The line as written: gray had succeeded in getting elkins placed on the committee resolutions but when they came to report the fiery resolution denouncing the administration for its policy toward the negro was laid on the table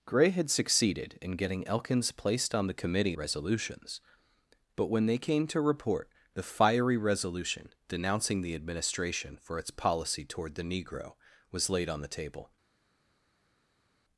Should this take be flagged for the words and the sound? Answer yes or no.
no